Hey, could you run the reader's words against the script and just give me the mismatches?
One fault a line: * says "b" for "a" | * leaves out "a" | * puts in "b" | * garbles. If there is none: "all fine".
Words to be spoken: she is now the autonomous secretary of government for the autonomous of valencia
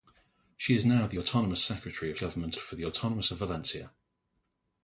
all fine